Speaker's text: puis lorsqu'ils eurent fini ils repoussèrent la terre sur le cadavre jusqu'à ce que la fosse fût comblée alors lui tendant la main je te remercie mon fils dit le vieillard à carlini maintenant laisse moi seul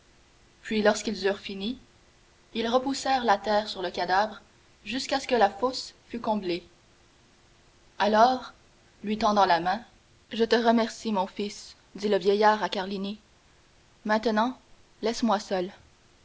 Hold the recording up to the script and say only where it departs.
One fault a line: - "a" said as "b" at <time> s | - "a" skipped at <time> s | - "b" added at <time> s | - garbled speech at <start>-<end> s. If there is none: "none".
none